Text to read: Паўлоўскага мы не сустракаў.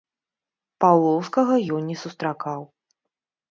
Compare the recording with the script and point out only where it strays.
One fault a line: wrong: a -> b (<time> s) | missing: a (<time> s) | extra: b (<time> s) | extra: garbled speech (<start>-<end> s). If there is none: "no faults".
wrong: мы -> ён (1.8 s)